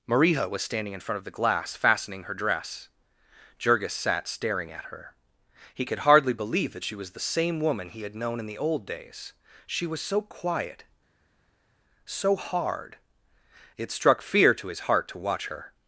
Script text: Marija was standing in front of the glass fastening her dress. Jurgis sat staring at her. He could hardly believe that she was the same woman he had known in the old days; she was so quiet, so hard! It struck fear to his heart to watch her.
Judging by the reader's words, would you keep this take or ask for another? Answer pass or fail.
pass